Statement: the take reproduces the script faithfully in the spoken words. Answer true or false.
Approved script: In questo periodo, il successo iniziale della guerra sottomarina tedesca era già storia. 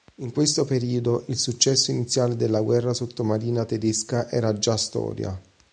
true